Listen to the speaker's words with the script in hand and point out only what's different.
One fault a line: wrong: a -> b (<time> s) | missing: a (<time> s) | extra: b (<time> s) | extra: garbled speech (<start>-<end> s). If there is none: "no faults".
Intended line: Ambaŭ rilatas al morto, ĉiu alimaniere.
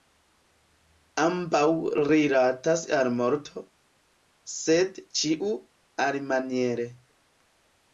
extra: sed (4.6 s)